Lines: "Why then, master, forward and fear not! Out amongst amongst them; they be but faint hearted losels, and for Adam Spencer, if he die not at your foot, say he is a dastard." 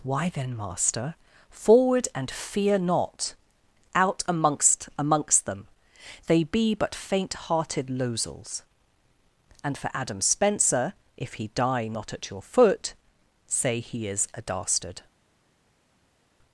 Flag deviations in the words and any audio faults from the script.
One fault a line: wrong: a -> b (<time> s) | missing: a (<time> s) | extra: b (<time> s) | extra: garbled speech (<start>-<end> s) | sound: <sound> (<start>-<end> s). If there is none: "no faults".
no faults